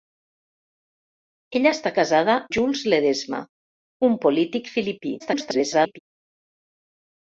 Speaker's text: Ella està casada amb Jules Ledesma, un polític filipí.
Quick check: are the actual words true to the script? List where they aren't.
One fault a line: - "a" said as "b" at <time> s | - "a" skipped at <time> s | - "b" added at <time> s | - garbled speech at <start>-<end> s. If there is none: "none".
- "amb" skipped at 2.4 s
- garbled speech at 5.2-6.0 s